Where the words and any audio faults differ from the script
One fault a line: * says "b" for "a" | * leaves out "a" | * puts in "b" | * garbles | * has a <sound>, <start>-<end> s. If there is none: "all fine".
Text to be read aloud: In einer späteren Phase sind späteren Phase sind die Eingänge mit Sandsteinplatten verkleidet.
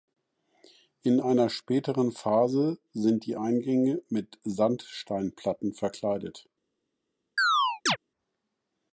* leaves out "späteren Phase sind"
* has a chirp, 7.4-8.0 s